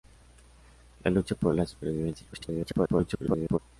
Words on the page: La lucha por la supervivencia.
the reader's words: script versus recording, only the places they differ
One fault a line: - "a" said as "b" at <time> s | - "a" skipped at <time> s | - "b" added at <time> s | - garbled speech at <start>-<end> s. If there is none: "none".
- garbled speech at 2.3-3.6 s